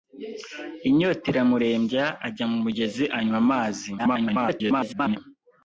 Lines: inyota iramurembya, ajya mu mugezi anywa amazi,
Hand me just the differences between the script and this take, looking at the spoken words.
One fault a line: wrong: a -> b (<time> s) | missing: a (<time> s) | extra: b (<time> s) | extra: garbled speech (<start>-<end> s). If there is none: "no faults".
extra: garbled speech (4.0-5.2 s)